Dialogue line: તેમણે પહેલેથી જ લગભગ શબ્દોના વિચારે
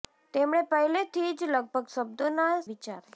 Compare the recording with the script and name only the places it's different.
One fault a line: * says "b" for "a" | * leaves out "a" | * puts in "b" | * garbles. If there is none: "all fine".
all fine